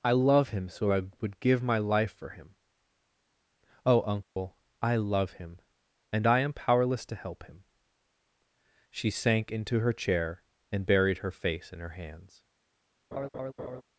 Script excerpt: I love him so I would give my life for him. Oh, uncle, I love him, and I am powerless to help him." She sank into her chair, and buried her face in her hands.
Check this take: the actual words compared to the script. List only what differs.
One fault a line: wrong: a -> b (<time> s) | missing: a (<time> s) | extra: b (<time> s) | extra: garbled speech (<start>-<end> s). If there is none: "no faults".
no faults